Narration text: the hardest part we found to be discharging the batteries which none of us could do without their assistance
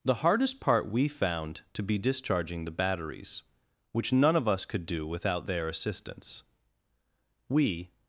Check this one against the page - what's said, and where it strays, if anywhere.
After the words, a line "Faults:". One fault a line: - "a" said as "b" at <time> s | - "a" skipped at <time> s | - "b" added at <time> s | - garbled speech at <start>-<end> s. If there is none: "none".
the hardest part we found to be discharging the batteries which none of us could do without their assistance we
Faults:
- "we" added at 7.5 s